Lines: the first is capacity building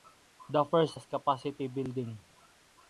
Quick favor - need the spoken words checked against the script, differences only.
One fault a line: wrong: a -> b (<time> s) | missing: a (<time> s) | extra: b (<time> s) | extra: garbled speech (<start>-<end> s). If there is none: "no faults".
no faults